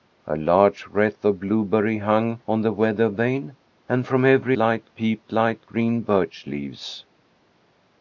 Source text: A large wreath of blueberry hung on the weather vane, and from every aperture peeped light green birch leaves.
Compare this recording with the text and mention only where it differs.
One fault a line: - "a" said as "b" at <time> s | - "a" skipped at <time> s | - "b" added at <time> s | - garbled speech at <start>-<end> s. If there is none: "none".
- "aperture" said as "light" at 4.6 s